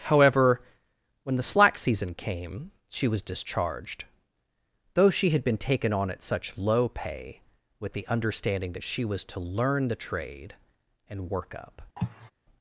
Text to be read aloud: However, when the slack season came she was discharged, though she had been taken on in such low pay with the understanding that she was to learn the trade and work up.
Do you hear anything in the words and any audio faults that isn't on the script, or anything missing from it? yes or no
yes